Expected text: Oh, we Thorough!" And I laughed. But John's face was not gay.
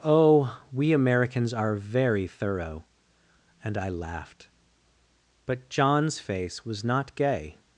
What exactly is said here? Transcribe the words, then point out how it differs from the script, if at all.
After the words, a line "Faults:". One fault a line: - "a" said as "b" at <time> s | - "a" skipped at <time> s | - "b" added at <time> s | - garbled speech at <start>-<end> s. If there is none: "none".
Oh, we Americans are very thorough!" And I laughed. But John's face was not gay.
Faults:
- "Americans are very" added at 0.9 s